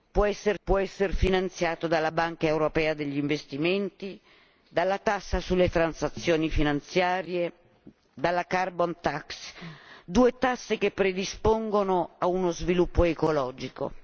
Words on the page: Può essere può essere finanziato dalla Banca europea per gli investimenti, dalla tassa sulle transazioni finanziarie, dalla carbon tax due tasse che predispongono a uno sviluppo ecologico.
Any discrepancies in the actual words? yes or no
no